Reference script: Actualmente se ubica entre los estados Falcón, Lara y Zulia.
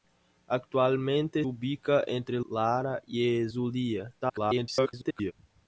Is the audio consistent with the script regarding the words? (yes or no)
no